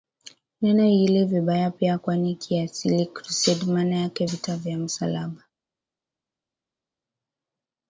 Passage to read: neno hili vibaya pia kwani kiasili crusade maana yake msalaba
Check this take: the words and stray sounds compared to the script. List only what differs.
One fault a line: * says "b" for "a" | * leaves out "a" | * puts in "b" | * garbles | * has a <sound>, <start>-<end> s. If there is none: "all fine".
* puts in "vita vya"